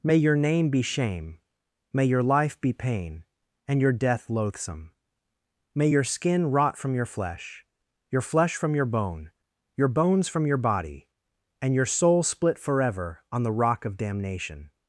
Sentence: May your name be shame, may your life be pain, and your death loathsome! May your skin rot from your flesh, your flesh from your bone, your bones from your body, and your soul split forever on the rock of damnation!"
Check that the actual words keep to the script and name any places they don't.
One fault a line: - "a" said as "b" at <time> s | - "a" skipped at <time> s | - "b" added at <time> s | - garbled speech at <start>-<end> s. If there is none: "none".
none